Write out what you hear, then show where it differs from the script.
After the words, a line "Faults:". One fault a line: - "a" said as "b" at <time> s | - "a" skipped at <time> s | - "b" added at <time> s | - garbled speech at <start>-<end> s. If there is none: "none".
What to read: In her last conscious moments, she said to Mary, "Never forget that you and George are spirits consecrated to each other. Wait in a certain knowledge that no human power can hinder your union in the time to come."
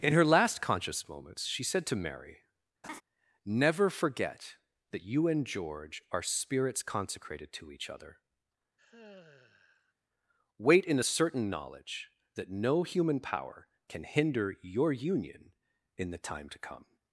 In her last conscious moments, she said to Mary, "Never forget that you and George are spirits consecrated to each other. Wait in a certain knowledge that no human power can hinder your union in the time to come."
Faults:
none